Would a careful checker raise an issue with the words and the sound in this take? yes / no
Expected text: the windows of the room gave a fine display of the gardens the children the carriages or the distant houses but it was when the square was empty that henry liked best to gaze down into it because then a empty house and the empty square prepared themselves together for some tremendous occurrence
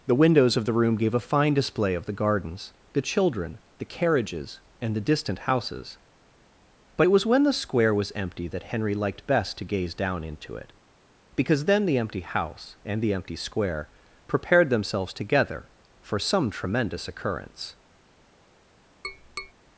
yes